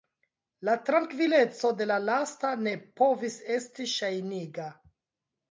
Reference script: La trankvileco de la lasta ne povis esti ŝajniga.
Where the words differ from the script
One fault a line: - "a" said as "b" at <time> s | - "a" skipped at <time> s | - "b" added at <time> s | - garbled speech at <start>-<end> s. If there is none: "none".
none